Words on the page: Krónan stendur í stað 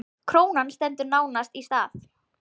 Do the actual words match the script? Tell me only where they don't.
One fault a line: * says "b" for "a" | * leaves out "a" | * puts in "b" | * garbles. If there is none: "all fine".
* puts in "nánast"